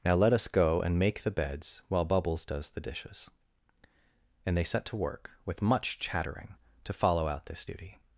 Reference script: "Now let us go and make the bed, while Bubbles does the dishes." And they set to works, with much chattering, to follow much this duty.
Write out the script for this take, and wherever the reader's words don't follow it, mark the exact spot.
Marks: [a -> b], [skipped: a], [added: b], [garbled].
"Now let us go and make the [bed, -> beds] while Bubbles does the dishes." And they set to [works, -> work] with much chattering, to follow [much -> out] this duty.